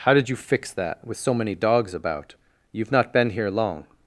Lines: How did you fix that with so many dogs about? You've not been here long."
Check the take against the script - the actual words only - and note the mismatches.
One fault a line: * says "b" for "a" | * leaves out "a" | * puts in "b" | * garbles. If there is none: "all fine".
all fine